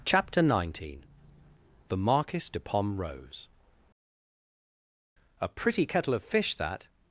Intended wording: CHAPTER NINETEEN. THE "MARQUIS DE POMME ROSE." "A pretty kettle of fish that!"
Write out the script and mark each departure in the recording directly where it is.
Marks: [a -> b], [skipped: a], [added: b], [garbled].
CHAPTER NINETEEN. THE "MARQUIS DE POMME ROSE." "A pretty kettle of fish that!"